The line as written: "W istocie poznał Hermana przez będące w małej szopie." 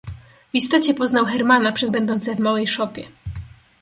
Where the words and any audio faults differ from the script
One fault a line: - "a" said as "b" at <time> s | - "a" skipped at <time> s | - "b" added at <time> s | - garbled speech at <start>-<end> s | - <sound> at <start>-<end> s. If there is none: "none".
none